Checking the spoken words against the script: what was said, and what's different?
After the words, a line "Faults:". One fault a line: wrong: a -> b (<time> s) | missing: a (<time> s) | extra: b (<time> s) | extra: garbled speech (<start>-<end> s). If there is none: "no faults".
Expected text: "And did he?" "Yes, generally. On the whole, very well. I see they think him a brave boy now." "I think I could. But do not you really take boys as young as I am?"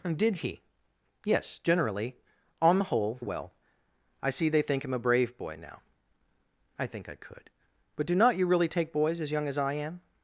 "And did he?" "Yes, generally. On the whole, well. I see they think him a brave boy now." "I think I could. But do not you really take boys as young as I am?"
Faults:
missing: very (3.2 s)